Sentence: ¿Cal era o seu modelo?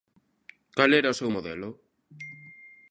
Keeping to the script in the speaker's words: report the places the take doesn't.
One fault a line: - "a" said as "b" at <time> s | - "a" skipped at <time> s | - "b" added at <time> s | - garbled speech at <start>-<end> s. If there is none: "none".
none